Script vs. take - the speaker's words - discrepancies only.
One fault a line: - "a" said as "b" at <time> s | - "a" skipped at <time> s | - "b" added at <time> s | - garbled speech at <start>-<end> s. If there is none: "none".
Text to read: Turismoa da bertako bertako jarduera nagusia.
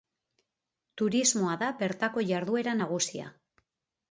- "bertako" skipped at 2.2 s